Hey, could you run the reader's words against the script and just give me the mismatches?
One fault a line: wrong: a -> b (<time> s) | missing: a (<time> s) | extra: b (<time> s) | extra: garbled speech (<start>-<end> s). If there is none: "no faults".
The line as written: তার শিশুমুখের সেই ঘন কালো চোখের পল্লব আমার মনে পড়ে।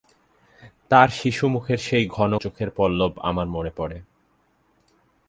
missing: কালো (2.3 s)